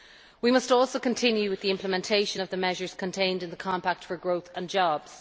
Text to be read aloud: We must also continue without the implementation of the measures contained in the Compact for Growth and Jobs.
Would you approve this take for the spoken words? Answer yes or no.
no